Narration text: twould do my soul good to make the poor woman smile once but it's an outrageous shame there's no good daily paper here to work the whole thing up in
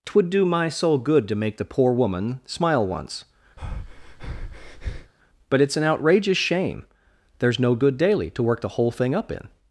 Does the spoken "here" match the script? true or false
false